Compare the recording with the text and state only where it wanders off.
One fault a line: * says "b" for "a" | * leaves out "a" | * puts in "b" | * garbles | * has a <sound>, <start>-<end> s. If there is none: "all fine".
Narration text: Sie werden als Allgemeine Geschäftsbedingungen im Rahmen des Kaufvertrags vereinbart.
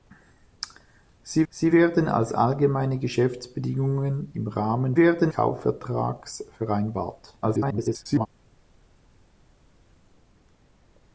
* puts in "sie"
* says "werden" for "des"
* garbles